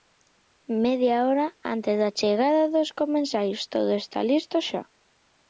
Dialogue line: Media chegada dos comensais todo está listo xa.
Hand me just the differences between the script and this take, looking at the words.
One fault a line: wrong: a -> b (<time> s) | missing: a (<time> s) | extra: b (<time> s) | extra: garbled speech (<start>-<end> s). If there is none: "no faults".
extra: hora antes da (1.3 s)